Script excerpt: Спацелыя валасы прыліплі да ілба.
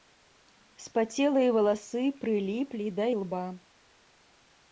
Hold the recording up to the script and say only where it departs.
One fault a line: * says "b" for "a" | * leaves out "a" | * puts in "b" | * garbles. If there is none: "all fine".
all fine